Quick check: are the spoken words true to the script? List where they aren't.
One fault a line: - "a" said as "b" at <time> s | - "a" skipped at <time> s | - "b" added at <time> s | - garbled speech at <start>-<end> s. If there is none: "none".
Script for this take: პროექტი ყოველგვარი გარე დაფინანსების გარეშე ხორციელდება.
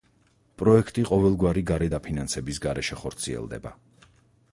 none